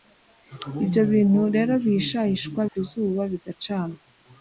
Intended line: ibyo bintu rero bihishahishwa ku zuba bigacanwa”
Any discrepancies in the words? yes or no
no